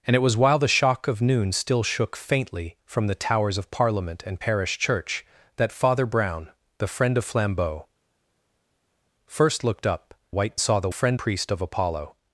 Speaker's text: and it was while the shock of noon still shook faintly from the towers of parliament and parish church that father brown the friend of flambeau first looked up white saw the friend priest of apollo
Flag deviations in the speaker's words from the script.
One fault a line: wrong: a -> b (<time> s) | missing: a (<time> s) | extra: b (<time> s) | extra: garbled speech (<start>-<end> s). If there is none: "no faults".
no faults